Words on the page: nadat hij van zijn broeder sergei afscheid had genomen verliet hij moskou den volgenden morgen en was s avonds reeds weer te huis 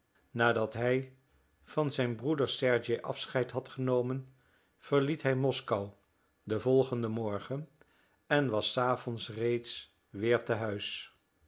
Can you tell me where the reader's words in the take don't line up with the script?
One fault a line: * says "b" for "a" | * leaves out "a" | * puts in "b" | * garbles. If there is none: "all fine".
all fine